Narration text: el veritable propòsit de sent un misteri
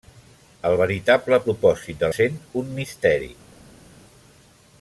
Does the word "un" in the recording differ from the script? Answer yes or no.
no